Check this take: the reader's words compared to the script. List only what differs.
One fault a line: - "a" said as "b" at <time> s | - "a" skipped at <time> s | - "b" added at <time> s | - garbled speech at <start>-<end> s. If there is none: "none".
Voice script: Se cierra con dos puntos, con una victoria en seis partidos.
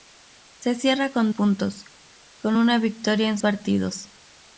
- "dos" skipped at 1.3 s
- "seis" skipped at 3.4 s